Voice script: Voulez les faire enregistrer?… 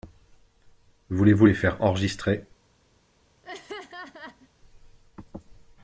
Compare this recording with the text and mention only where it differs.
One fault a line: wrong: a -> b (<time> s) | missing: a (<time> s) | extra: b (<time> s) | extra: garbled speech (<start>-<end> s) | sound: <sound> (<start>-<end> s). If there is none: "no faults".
extra: vous (1.3 s)
sound: laugh (3.4-4.5 s)